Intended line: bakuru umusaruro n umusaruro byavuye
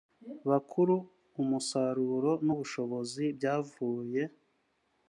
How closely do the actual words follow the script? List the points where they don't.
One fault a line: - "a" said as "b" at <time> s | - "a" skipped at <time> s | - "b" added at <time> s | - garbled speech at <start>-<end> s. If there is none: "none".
- "umusaruro" said as "ubushobozi" at 2.5 s